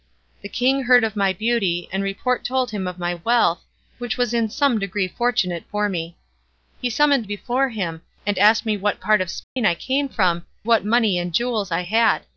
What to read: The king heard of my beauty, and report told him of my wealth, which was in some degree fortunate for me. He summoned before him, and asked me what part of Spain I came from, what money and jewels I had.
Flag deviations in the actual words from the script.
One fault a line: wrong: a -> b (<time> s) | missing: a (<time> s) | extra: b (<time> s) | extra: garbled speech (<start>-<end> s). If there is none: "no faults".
no faults